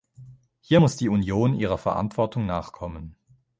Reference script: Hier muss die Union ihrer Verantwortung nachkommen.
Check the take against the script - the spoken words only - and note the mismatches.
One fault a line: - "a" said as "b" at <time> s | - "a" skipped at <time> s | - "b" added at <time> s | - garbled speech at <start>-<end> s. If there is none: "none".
none